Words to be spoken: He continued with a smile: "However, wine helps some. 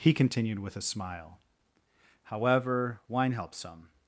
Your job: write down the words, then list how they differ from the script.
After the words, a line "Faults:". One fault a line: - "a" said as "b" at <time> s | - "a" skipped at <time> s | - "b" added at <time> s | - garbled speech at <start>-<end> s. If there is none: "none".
He continued with a smile: "However, wine helps some.
Faults:
none